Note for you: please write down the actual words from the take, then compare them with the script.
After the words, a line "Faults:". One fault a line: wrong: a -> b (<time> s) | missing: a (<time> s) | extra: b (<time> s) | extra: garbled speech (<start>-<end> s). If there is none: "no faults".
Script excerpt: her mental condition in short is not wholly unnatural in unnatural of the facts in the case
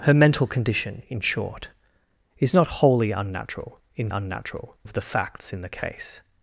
her mental condition in short is not wholly unnatural in unnatural of the facts in the case
Faults:
no faults